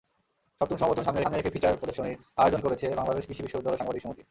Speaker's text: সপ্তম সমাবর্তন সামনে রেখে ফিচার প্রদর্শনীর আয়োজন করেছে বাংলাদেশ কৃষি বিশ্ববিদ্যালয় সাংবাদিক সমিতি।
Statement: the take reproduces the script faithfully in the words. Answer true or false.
false